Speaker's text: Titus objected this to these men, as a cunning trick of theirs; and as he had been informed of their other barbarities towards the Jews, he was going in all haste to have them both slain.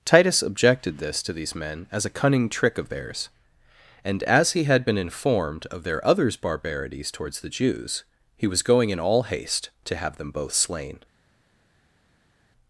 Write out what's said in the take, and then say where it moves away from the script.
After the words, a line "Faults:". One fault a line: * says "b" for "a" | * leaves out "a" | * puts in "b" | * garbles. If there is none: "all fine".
Titus objected this to these men, as a cunning trick of theirs; and as he had been informed of their others barbarities towards the Jews, he was going in all haste to have them both slain.
Faults:
* says "others" for "other"